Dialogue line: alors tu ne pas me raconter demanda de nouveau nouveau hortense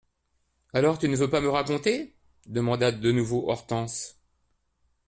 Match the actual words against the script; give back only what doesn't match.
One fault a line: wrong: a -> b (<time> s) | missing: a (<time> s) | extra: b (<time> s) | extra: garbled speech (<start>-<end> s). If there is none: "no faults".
extra: veux (1.1 s)
missing: nouveau (3.5 s)